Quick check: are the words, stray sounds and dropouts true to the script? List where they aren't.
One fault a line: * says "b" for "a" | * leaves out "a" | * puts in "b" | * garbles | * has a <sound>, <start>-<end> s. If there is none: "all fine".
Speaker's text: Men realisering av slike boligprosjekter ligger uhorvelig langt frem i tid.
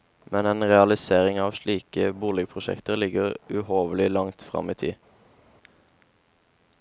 * puts in "en"